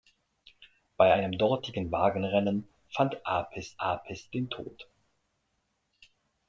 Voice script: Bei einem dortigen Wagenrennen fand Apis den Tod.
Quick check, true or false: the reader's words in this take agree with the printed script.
false